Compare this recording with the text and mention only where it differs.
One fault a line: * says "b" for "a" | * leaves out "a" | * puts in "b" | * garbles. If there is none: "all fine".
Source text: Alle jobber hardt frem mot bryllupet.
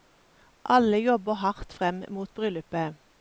all fine